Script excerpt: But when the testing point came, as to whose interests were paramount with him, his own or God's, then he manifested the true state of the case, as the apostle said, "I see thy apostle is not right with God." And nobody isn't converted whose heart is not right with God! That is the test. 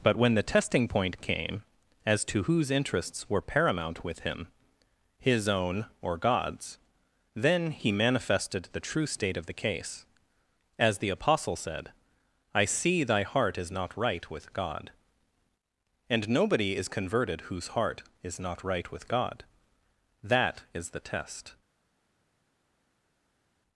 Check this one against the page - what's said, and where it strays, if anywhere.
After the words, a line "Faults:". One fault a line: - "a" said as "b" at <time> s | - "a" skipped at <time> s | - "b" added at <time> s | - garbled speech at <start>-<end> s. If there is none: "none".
But when the testing point came, as to whose interests were paramount with him, his own or God's, then he manifested the true state of the case, as the apostle said, "I see thy heart is not right with God." And nobody is converted whose heart is not right with God! That is the test.
Faults:
- "apostle" said as "heart" at 13.2 s
- "isn't" said as "is" at 16.8 s